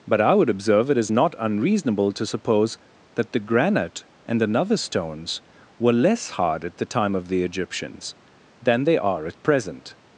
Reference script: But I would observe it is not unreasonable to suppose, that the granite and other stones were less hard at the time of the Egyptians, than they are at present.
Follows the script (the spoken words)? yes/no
no